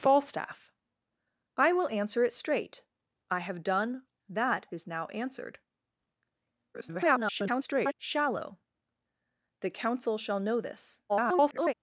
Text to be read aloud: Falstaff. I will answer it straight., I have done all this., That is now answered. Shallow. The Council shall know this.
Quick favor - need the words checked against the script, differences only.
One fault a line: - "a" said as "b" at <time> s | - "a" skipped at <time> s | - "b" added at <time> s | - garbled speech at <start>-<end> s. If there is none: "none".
- "all this" skipped at 4.0 s
- garbled speech at 6.7-7.9 s
- garbled speech at 11.1-11.7 s